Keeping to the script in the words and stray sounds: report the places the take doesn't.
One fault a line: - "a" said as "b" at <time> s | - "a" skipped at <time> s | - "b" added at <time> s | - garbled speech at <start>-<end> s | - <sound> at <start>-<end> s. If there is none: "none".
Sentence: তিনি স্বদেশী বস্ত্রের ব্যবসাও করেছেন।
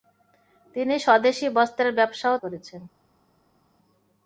none